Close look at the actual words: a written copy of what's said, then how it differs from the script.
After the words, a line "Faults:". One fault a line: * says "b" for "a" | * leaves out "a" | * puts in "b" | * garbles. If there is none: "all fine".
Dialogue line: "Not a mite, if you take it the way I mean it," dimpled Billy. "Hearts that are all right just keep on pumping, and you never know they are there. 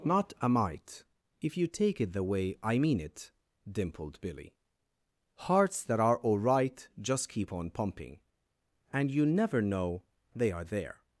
"Not a mite, if you take it the way I mean it," dimpled Billy. "Hearts that are all right just keep on pumping, and you never know they are there.
Faults:
all fine